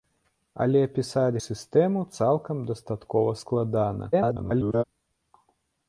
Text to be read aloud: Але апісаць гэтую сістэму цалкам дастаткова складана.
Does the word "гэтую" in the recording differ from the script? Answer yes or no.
yes